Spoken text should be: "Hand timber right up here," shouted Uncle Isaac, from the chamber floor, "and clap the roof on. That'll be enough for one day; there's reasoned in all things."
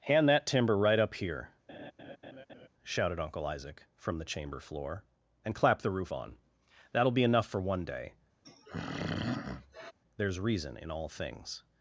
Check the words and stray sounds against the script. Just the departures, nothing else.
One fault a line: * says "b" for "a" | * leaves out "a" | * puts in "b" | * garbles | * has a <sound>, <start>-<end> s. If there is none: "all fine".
* puts in "that"
* has a laugh, 1.7-2.7 s
* has a throat clearing, 8.4-9.9 s
* says "reason" for "reasoned"